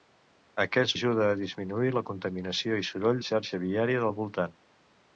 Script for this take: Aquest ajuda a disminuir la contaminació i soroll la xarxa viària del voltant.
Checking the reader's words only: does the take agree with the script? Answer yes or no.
yes